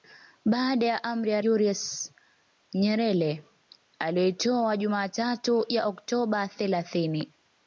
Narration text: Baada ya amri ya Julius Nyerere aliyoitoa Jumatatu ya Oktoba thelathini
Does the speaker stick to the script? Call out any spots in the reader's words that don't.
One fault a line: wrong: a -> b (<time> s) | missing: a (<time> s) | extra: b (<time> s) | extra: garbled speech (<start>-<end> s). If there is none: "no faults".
no faults